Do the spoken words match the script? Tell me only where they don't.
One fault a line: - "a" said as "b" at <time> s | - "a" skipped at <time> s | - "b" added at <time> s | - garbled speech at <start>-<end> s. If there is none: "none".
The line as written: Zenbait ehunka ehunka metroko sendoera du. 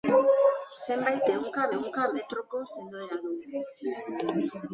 none